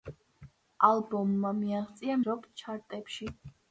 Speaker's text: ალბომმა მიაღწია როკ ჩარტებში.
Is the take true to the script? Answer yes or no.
yes